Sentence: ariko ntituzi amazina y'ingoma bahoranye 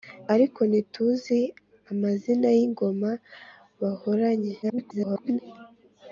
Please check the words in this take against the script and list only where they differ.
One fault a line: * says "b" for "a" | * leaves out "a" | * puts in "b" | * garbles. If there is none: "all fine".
* garbles